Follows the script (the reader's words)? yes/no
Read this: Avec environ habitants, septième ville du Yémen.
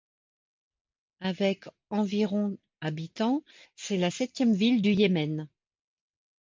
no